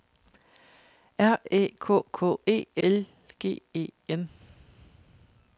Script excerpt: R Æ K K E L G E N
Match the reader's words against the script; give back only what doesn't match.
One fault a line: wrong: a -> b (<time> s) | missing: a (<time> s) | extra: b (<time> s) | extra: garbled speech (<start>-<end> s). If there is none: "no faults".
no faults